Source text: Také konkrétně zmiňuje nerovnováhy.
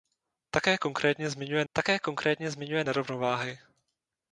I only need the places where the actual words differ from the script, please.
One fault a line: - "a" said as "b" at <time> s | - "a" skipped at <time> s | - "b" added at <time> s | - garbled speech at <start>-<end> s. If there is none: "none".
- "také konkrétně zmiňuje" added at 1.7 s